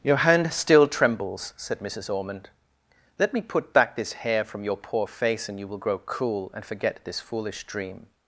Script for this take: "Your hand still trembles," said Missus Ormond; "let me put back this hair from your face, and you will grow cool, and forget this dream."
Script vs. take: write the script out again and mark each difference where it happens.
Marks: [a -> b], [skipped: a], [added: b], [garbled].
"Your hand still trembles," said Missus Ormond; "let me put back this hair from your [added: poor] face, and you will grow cool, and forget this [added: foolish] dream."